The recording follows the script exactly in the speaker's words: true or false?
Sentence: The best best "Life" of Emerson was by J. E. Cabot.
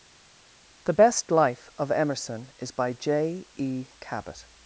false